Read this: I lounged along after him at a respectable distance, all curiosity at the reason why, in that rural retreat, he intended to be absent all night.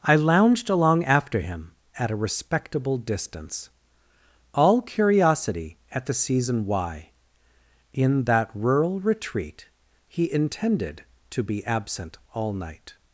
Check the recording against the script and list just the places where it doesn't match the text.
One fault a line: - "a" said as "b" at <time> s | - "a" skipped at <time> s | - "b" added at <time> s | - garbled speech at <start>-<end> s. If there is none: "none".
- "reason" said as "season" at 6.1 s